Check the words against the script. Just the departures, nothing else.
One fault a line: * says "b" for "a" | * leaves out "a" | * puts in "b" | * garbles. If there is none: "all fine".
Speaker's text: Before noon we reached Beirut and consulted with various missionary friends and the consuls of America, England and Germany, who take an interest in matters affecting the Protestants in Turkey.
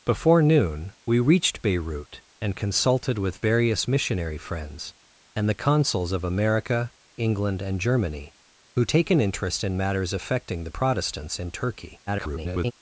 * garbles